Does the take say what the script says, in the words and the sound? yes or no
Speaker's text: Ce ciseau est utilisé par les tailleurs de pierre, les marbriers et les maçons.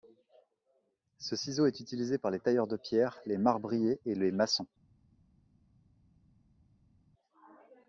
yes